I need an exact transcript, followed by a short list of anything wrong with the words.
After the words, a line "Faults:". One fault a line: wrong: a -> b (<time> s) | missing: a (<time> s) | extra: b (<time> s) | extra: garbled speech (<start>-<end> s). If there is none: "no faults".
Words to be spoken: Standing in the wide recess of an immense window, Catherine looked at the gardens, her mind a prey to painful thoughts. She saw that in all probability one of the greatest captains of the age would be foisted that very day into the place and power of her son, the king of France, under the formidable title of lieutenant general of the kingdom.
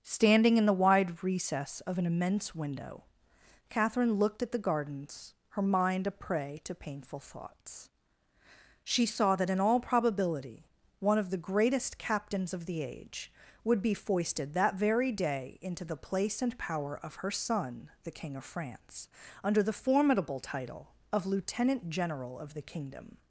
Standing in the wide recess of an immense window, Catherine looked at the gardens, her mind a prey to painful thoughts. She saw that in all probability one of the greatest captains of the age would be foisted that very day into the place and power of her son, the king of France, under the formidable title of lieutenant general of the kingdom.
Faults:
no faults